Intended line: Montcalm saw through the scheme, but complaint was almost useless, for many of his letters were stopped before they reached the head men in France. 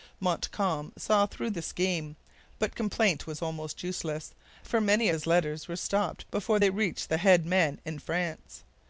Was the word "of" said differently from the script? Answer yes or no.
yes